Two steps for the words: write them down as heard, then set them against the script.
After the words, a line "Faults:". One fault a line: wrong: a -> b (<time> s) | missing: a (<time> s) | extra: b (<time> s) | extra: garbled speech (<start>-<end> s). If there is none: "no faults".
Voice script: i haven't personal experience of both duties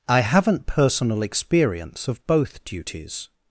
i haven't personal experience of both duties
Faults:
no faults